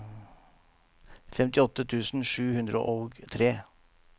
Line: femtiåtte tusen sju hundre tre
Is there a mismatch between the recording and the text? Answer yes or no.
yes